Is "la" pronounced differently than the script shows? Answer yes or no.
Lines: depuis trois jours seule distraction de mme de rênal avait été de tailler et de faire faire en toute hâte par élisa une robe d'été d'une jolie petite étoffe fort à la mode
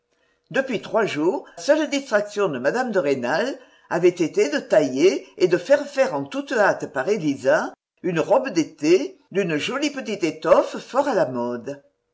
no